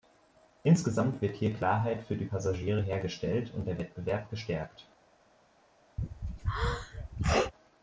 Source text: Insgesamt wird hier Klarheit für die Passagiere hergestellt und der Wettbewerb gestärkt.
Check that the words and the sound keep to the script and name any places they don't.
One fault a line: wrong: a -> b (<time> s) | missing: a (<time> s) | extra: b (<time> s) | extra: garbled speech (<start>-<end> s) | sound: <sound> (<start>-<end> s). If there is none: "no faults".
sound: sneeze (6.0-7.5 s)